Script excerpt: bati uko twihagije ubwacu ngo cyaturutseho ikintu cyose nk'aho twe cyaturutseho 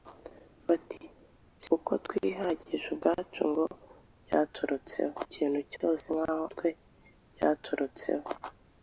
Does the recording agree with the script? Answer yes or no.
yes